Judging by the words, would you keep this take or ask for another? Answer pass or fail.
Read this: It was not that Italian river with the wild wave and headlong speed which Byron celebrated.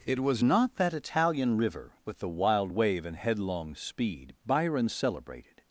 fail